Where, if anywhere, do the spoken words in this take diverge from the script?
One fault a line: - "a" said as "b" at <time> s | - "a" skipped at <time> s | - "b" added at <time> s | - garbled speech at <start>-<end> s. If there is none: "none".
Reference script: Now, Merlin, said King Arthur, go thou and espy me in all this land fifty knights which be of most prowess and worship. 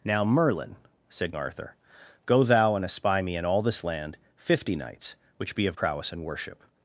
- "King" skipped at 1.4 s
- "most" skipped at 5.8 s